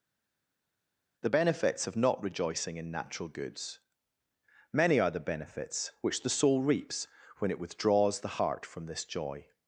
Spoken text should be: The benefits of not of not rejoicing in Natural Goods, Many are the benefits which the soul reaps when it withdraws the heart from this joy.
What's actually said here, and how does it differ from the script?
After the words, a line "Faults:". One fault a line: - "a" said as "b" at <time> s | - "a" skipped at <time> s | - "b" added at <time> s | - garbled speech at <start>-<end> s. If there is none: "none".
The benefits of not rejoicing in Natural Goods, Many are the benefits which the soul reaps when it withdraws the heart from this joy.
Faults:
- "of not" skipped at 2.2 s